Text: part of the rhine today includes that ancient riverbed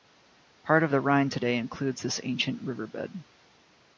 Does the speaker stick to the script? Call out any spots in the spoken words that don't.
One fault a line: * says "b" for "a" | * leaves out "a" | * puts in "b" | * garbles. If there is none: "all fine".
* says "this" for "that"